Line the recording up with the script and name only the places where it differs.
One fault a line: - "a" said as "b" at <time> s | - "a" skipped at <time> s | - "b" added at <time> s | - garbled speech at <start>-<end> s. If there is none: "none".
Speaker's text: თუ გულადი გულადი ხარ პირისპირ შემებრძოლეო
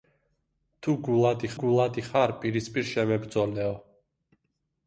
none